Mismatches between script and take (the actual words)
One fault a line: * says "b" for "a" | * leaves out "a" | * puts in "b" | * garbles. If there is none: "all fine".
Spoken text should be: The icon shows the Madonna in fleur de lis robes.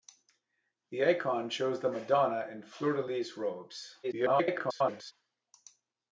* garbles